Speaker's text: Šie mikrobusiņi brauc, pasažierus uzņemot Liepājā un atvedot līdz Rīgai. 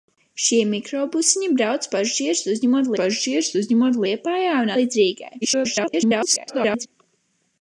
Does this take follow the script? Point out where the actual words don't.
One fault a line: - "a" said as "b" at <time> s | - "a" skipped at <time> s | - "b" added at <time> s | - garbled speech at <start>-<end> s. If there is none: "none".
- "pasažierus uzņemot" added at 3.0 s
- "atvedot" skipped at 4.7 s
- garbled speech at 5.4-6.9 s